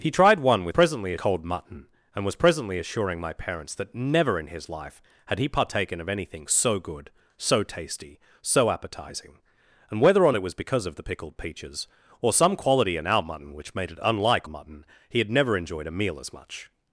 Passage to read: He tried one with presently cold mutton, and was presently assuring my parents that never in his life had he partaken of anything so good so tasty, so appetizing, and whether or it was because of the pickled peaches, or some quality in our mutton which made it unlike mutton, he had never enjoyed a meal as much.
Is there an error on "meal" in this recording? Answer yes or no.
no